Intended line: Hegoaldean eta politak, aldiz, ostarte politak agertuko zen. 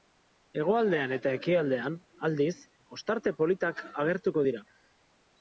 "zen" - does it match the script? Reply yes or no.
no